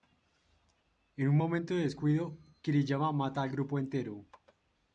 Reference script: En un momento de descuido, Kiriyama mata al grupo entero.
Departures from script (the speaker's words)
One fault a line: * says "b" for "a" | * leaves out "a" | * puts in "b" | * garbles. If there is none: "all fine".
all fine